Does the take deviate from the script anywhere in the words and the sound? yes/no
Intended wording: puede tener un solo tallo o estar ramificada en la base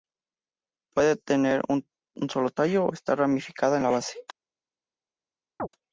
yes